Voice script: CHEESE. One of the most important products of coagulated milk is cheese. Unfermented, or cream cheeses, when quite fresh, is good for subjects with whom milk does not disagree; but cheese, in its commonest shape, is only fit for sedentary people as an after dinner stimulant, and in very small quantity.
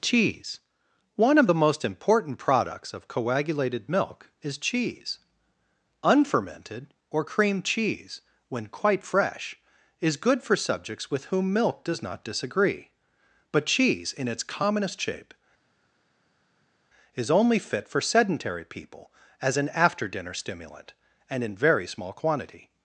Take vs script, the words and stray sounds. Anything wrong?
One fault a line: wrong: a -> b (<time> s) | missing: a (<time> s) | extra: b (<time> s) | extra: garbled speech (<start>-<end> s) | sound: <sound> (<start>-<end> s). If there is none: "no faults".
wrong: cheeses -> cheese (7.6 s)